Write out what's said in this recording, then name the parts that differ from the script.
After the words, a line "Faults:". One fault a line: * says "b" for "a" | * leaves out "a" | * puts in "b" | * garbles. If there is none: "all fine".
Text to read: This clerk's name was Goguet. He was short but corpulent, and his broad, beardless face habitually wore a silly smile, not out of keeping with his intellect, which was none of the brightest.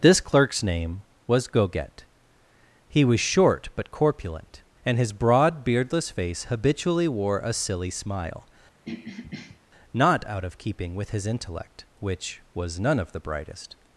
This clerk's name was Goguet. He was short but corpulent, and his broad, beardless face habitually wore a silly smile, not out of keeping with his intellect, which was none of the brightest.
Faults:
all fine